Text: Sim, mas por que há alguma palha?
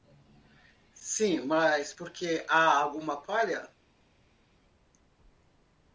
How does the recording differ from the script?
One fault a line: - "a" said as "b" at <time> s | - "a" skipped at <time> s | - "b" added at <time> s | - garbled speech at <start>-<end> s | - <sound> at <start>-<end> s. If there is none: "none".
none